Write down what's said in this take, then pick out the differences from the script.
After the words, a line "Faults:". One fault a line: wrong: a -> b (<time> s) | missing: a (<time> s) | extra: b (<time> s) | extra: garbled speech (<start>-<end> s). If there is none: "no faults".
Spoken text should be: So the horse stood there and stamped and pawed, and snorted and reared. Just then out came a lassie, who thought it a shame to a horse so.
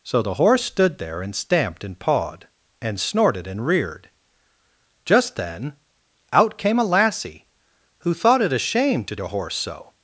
So the horse stood there and stamped and pawed, and snorted and reared. Just then out came a lassie, who thought it a shame to a horse so.
Faults:
no faults